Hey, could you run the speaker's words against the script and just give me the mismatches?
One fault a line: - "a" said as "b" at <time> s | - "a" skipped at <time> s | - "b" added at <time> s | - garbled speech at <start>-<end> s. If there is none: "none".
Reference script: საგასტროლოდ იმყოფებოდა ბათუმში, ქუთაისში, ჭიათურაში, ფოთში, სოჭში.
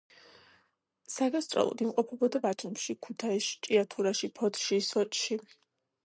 none